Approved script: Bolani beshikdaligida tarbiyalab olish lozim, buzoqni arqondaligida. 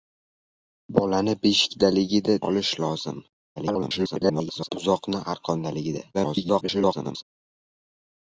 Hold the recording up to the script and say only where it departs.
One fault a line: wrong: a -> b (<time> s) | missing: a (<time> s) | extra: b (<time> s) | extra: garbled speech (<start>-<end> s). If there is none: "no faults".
missing: tarbiyalab (2.4 s)
extra: garbled speech (3.6-4.7 s)
extra: garbled speech (6.1-7.2 s)